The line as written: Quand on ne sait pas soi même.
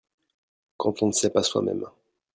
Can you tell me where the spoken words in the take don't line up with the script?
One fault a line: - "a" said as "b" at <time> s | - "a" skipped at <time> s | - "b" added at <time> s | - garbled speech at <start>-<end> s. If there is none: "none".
none